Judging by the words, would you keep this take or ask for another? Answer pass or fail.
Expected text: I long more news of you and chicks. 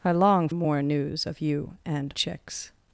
pass